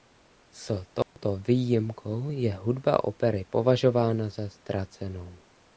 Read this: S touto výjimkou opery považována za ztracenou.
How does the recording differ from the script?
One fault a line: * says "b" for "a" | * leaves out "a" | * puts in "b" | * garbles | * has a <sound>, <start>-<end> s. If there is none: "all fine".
* has a dropout, 1.0-1.2 s
* puts in "je hudba"